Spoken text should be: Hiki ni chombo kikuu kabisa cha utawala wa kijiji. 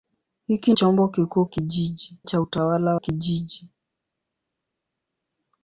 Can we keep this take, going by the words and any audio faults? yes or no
no